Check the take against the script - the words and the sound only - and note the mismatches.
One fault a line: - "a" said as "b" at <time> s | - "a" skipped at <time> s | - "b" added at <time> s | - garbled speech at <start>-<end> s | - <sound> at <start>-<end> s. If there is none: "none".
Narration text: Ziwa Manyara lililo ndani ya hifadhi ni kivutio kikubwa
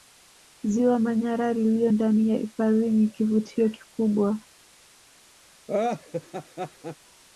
- laugh at 5.7-7.0 s